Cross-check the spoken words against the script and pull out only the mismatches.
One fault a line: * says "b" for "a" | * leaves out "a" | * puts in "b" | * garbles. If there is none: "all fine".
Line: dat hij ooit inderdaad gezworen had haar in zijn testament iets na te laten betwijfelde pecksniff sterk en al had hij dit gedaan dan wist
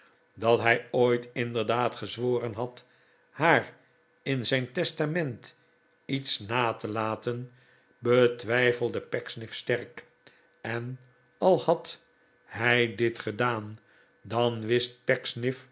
all fine